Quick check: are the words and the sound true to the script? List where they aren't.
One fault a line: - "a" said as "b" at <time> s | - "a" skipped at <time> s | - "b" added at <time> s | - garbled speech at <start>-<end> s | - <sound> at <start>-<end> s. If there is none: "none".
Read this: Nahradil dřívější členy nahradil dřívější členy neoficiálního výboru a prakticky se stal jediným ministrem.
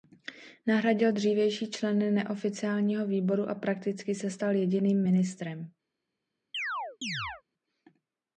- "nahradil dřívější členy" skipped at 2.1 s
- chirp at 6.5-7.4 s